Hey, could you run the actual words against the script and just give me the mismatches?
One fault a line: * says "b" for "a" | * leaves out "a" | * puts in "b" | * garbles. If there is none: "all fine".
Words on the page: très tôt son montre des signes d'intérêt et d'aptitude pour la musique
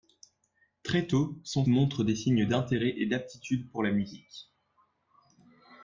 all fine